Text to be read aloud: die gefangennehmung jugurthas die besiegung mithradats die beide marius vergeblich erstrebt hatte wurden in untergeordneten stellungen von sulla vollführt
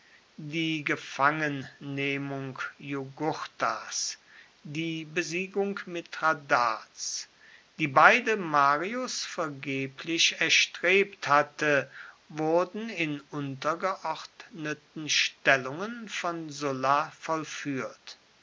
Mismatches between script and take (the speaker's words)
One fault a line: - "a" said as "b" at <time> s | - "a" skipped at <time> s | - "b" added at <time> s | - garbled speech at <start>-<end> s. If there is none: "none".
none